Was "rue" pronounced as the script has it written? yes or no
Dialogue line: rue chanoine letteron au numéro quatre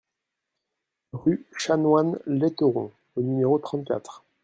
yes